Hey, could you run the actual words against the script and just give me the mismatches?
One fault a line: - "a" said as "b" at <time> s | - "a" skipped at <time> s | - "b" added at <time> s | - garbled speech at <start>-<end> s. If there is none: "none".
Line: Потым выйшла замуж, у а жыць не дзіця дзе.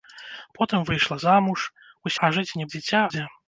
none